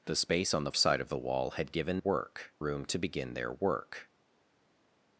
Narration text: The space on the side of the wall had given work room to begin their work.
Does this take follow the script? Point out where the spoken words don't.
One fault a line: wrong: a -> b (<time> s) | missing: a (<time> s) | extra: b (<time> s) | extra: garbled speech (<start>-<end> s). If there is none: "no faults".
no faults